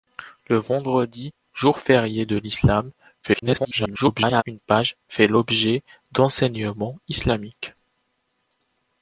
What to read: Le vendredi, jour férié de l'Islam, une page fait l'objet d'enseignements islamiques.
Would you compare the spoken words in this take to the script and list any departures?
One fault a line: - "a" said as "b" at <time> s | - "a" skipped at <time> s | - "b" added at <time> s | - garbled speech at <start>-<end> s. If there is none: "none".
- garbled speech at 3.2-4.4 s